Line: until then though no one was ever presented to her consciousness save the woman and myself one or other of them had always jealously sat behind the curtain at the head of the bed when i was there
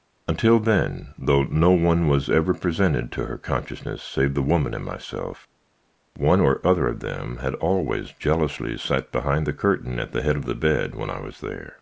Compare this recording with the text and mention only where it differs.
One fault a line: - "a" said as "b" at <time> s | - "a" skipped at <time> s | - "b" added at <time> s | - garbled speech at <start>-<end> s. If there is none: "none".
none